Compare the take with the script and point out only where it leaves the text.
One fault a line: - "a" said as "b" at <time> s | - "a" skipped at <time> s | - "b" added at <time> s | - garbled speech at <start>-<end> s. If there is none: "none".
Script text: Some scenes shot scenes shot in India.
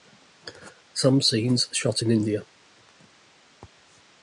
- "scenes shot" skipped at 2.0 s